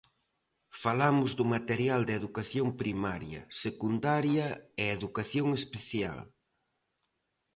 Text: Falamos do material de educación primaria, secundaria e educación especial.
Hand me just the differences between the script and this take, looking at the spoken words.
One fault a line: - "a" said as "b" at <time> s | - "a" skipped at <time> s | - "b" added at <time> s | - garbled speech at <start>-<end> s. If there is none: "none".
none